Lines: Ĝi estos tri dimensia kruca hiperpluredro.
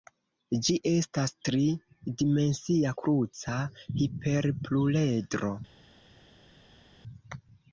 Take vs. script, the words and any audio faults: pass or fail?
fail